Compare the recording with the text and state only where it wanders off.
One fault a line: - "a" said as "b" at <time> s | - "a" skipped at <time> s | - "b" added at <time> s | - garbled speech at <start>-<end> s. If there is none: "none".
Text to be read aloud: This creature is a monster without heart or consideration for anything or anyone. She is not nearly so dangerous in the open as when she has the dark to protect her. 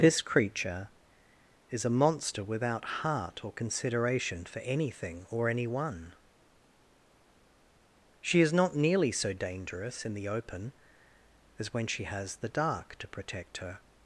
none